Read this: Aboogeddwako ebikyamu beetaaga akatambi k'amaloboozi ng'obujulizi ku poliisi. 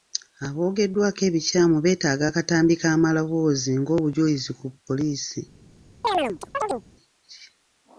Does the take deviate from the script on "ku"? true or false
false